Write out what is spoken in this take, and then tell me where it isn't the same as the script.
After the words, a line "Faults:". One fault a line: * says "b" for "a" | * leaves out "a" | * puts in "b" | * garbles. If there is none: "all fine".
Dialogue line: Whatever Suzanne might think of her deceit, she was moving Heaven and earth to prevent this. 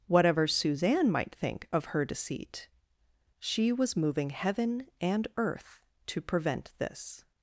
Whatever Suzanne might think of her deceit, she was moving Heaven and earth to prevent this.
Faults:
all fine